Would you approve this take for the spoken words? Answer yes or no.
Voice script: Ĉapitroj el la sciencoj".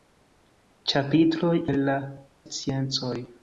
yes